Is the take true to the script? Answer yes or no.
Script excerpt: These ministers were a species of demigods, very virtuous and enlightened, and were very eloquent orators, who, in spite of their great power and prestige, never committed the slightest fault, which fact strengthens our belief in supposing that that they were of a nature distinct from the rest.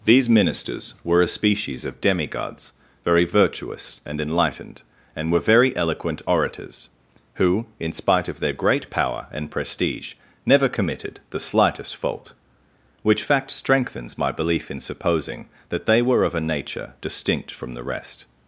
no